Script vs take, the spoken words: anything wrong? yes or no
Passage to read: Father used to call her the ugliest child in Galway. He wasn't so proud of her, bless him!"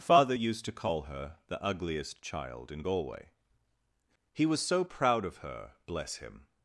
yes